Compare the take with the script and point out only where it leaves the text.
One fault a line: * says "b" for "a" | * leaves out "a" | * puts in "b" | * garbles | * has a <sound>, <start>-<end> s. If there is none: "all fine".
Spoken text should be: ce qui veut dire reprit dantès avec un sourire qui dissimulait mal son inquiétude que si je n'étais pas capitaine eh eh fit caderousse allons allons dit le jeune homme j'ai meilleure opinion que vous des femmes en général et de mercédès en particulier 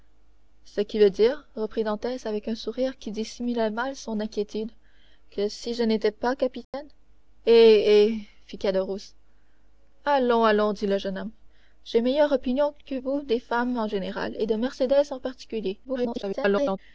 * has a dropout, 6.6-6.7 s
* garbles